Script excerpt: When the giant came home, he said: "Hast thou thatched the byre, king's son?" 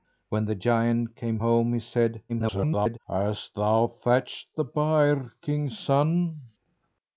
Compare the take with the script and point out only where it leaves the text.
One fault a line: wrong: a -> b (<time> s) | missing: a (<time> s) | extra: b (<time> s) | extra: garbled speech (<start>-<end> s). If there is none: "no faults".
extra: garbled speech (2.3-3.0 s)